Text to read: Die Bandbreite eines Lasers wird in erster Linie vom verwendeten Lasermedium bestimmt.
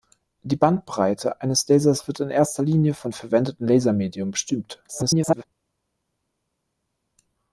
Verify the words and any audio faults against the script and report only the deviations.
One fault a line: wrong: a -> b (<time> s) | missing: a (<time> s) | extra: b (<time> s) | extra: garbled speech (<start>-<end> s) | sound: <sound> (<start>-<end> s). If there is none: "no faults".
extra: garbled speech (4.9-5.4 s)